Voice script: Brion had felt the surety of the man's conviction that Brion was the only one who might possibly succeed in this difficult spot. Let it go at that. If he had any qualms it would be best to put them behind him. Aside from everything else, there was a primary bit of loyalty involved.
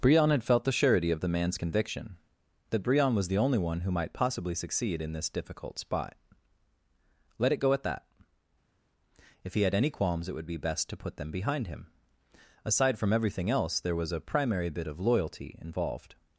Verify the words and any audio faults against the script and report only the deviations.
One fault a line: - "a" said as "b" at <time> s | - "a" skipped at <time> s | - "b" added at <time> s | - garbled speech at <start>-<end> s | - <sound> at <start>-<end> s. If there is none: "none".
none